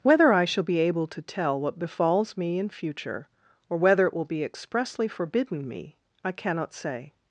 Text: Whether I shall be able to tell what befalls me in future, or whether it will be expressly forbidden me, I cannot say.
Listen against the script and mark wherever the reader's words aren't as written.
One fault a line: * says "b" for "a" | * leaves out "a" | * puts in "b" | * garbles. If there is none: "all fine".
all fine